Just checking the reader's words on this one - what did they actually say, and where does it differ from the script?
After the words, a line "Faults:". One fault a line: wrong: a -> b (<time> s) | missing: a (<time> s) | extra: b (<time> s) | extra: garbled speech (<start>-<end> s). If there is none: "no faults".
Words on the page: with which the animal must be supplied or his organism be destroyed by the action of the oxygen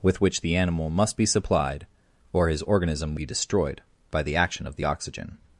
with which the animal must be supplied or his organism be destroyed by the action of the oxygen
Faults:
no faults